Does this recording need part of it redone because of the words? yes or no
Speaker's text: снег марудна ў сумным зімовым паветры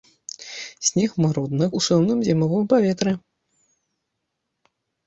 no